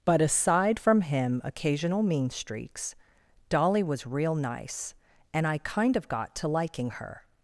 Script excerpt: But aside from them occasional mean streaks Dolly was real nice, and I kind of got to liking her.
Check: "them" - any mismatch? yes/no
yes